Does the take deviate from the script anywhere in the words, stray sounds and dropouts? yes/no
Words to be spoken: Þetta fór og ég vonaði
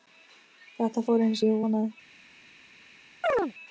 yes